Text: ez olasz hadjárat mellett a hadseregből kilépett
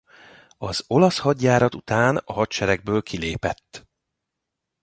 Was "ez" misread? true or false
true